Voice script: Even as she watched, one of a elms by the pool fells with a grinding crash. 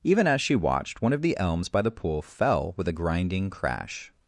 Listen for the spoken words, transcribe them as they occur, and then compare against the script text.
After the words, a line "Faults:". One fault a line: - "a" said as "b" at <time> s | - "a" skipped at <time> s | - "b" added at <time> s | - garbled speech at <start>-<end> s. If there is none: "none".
Even as she watched, one of the elms by the pool fell with a grinding crash.
Faults:
- "a" said as "the" at 1.2 s
- "fells" said as "fell" at 2.2 s